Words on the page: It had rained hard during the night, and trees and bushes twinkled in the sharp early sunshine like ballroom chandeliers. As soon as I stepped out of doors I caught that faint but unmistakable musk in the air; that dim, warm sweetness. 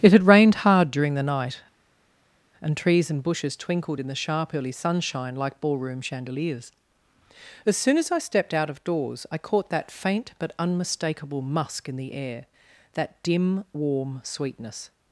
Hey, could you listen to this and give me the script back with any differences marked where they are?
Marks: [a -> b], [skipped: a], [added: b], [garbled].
It had rained hard during the night, and trees and bushes twinkled in the sharp early sunshine like ballroom chandeliers. As soon as I stepped out of doors I caught that faint but unmistakable musk in the air; that dim, warm sweetness.